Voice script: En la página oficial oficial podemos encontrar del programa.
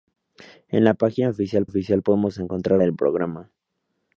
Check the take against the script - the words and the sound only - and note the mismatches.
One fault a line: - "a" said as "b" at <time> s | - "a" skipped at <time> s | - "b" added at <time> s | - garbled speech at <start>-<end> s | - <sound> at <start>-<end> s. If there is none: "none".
none